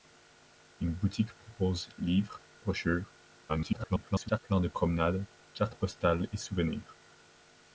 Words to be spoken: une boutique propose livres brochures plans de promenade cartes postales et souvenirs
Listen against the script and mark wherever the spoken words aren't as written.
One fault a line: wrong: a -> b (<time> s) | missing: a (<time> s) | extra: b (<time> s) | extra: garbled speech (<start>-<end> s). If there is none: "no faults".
extra: garbled speech (3.5-4.4 s)